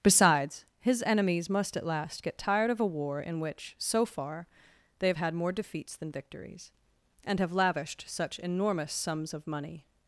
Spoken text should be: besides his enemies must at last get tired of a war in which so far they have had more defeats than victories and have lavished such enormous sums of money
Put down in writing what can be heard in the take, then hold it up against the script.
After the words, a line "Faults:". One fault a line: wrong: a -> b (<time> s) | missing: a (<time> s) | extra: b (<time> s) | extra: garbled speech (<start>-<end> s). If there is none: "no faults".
besides his enemies must at last get tired of a war in which so far they have had more defeats than victories and have lavished such enormous sums of money
Faults:
no faults